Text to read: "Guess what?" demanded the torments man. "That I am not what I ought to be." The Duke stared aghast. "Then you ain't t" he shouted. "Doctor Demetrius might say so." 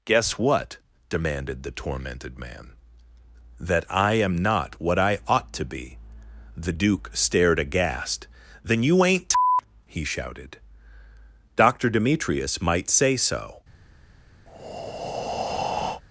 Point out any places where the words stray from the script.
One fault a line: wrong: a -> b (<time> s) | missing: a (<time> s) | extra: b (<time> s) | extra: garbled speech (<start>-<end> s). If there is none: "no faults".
wrong: torments -> tormented (1.7 s)